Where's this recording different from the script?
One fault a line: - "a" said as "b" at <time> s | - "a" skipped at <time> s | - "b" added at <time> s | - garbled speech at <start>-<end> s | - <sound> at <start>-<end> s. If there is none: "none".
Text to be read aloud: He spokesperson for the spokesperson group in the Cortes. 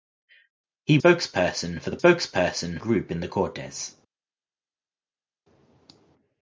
none